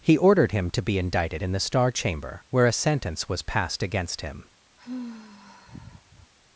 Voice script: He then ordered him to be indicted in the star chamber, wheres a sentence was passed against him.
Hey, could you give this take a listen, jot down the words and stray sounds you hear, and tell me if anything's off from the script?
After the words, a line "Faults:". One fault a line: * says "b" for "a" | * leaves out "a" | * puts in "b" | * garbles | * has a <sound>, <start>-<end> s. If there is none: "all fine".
He ordered him to be indicted in the star chamber, where a sentence was passed against him.
Faults:
* leaves out "then"
* says "where" for "wheres"
* has a sigh, 4.8-6.3 s